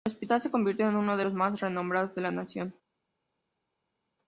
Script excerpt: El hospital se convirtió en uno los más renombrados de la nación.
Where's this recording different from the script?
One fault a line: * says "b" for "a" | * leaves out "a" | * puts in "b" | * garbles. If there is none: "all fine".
* puts in "de"